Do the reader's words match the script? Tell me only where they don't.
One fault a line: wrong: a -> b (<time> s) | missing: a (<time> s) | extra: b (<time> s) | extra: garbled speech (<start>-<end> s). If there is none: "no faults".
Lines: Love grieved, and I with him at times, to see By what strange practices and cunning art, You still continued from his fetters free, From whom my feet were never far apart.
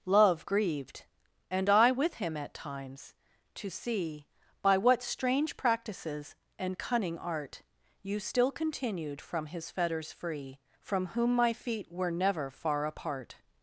no faults